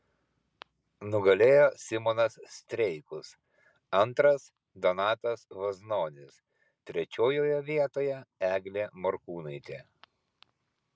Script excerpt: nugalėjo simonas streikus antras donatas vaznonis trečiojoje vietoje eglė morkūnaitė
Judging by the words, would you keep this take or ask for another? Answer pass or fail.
pass